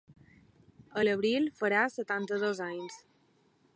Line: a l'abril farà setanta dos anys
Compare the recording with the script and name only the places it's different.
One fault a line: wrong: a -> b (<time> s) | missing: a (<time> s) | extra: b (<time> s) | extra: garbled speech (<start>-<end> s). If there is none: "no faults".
no faults